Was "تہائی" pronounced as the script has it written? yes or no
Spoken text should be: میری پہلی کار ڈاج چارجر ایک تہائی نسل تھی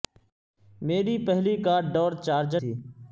no